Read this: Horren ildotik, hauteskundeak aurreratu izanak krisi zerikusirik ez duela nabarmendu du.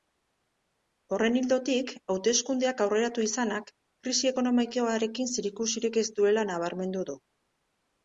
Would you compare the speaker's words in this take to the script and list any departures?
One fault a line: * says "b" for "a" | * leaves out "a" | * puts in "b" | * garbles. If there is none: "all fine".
* puts in "ekonomikoarekin"